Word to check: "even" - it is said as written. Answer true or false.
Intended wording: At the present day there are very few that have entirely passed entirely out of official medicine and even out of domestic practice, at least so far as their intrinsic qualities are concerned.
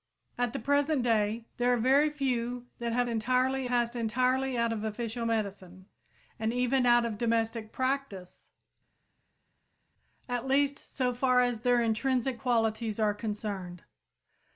true